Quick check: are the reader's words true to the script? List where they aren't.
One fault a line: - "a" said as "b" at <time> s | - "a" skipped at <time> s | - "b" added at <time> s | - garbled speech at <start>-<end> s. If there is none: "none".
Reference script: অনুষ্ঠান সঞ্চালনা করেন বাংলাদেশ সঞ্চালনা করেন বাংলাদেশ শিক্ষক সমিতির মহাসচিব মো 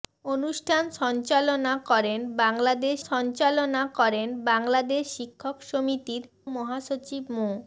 none